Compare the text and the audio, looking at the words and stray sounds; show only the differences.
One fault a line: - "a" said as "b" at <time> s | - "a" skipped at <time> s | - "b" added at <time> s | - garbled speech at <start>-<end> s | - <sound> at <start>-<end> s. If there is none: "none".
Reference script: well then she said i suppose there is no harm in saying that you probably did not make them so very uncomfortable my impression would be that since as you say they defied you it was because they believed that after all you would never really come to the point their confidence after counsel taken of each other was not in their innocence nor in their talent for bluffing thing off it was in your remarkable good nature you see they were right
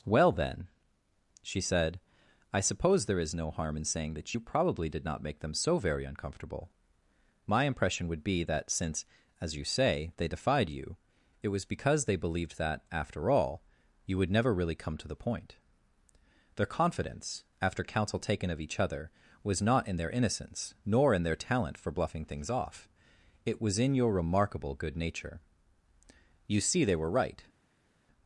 - "thing" said as "things" at 22.2 s